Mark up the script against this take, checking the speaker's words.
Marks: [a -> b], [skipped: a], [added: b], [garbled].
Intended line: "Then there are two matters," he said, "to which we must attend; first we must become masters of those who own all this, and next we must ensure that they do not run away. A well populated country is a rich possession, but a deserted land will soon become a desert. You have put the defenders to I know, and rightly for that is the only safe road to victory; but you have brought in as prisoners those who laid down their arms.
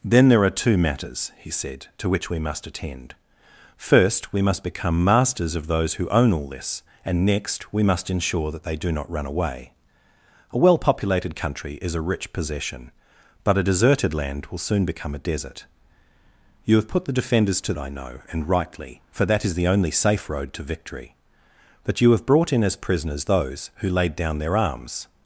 "Then there are two matters," he said, "to which we must attend; first we must become masters of those who own all this, and next we must ensure that they do not run away. A well populated country is a rich possession, but a deserted land will soon become a desert. You have put the defenders to I know, and rightly for that is the only safe road to victory; but you have brought in as prisoners those who laid down their arms.